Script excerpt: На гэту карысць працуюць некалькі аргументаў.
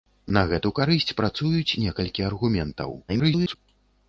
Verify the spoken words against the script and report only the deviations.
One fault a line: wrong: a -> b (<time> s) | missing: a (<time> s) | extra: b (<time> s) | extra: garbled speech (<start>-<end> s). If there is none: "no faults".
extra: garbled speech (3.1-3.6 s)